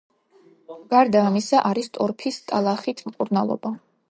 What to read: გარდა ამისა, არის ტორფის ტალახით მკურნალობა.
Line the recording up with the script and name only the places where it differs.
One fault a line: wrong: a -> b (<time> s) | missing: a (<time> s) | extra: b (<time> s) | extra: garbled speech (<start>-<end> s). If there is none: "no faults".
no faults